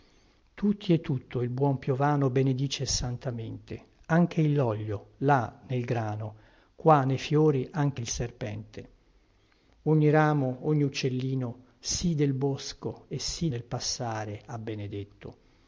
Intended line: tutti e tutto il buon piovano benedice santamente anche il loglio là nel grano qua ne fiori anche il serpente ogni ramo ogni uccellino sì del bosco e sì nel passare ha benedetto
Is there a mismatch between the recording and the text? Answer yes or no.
no